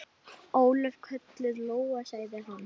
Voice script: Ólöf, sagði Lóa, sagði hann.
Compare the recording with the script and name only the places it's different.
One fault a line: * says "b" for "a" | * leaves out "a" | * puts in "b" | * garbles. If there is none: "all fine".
* says "kölluð" for "sagði"